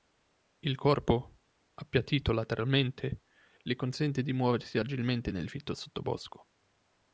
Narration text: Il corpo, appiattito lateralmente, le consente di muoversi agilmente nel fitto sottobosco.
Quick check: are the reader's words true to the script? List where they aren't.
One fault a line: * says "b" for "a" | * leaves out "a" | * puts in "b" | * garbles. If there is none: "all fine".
all fine